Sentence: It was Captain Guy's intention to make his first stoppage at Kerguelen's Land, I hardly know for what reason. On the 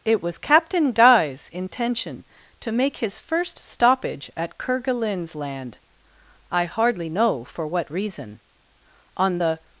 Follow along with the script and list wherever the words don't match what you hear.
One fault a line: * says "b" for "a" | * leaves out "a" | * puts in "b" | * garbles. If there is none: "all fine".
all fine